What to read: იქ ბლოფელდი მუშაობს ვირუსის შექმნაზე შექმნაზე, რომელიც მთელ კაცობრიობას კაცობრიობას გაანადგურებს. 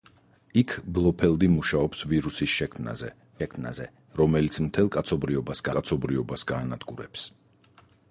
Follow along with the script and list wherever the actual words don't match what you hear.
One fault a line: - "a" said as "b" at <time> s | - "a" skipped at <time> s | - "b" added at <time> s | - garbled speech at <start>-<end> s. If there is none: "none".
none